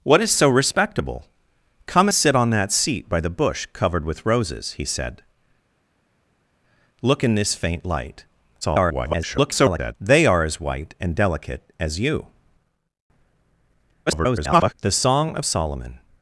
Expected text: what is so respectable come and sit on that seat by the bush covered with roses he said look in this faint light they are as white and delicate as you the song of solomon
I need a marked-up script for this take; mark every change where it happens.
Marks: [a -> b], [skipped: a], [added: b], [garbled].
what is so respectable come [skipped: and] sit on that seat by the bush covered with roses he said look in this faint light [garbled] they are as white and delicate as you [garbled] the song of solomon